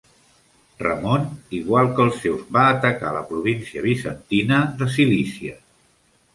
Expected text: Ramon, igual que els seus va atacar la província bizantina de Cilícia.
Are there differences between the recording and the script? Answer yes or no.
no